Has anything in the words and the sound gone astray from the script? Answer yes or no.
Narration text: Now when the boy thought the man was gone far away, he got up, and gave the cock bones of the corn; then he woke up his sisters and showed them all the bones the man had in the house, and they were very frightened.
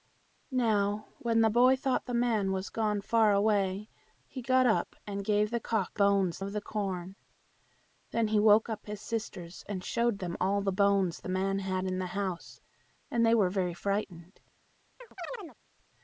yes